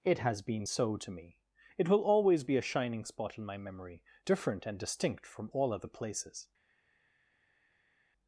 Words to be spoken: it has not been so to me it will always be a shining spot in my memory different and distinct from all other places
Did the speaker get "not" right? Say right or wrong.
wrong